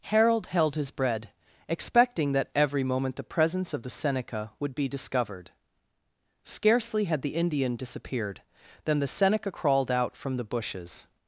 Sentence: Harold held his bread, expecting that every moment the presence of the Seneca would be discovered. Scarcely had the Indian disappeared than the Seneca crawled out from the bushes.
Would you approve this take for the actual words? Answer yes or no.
yes